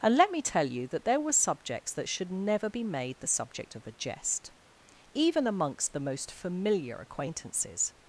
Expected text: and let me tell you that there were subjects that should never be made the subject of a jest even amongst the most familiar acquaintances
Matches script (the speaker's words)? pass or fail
pass